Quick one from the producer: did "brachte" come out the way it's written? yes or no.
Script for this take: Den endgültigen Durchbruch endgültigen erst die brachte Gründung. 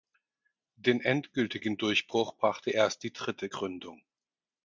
no